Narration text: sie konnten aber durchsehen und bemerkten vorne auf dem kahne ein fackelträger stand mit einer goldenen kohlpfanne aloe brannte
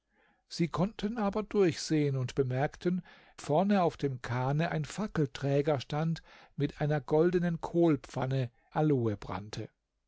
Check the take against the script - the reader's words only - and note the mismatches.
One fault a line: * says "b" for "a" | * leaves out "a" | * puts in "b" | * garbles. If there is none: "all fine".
all fine